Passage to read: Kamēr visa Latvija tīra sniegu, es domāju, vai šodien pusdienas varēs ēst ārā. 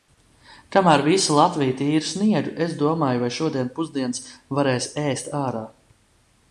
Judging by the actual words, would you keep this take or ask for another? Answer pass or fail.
pass